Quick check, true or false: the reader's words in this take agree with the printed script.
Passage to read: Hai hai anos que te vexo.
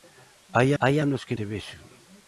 true